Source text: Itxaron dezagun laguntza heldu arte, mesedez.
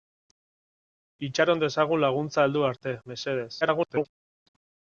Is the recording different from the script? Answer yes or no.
yes